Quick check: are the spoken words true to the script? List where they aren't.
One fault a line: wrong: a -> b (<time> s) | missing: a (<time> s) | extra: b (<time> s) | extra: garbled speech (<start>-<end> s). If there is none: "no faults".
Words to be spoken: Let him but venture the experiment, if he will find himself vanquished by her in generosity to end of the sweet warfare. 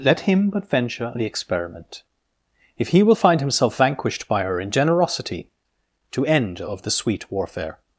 no faults